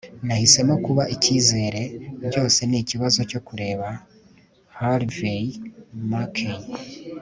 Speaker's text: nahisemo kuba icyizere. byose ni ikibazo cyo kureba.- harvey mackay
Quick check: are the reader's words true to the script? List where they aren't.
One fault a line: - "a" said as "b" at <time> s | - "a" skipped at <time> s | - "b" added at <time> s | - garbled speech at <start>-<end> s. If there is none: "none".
none